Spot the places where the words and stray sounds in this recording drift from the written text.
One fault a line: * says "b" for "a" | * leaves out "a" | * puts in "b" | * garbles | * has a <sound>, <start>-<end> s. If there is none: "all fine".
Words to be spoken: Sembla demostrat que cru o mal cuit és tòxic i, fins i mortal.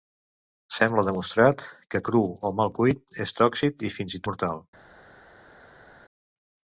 all fine